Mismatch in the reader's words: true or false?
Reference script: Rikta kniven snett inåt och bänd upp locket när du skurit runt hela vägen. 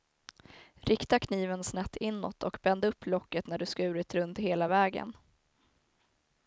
false